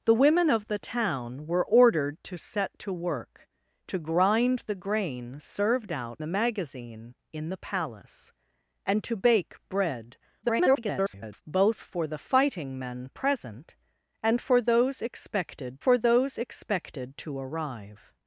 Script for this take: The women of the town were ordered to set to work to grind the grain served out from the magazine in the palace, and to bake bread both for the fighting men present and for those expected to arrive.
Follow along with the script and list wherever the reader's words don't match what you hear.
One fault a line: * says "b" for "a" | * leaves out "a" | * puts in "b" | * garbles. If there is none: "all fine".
* leaves out "from"
* garbles
* puts in "for those expected"